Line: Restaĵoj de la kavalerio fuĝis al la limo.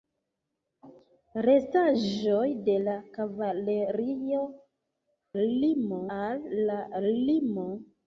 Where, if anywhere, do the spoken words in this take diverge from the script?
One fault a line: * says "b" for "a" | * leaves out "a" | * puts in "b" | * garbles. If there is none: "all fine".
* says "limo" for "fuĝis"